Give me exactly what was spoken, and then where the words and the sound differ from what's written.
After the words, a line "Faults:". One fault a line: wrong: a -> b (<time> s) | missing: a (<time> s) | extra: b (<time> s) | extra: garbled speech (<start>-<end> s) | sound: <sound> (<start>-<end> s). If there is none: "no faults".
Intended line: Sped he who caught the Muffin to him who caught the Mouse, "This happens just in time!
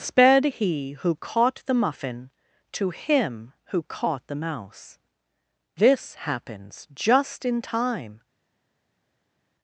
Sped he who caught the Muffin to him who caught the Mouse, "This happens just in time!
Faults:
no faults